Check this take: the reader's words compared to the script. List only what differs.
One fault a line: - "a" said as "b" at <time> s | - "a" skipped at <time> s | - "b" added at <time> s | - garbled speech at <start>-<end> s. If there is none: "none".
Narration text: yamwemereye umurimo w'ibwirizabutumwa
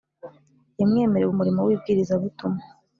none